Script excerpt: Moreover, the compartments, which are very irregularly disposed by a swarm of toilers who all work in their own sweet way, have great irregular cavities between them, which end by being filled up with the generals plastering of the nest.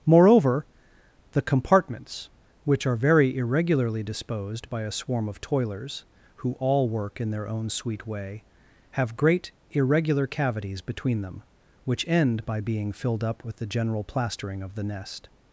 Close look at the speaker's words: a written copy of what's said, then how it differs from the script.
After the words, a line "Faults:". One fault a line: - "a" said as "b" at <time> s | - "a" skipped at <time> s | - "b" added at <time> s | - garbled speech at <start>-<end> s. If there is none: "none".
Moreover, the compartments, which are very irregularly disposed by a swarm of toilers who all work in their own sweet way, have great irregular cavities between them, which end by being filled up with the general plastering of the nest.
Faults:
- "generals" said as "general" at 13.7 s